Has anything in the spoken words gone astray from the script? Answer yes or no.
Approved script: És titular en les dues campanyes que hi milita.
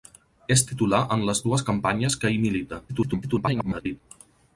yes